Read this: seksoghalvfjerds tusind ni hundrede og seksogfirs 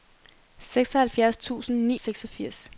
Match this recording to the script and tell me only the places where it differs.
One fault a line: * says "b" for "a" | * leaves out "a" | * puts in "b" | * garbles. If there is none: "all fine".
* leaves out "hundrede og"